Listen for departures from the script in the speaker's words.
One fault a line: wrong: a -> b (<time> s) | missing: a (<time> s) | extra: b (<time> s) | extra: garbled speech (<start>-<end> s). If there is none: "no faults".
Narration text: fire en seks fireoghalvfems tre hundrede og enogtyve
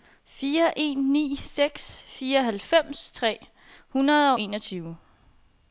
extra: ni (1.1 s)